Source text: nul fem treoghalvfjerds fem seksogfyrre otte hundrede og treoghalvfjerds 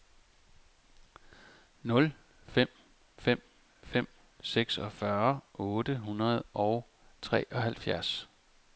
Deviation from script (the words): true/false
true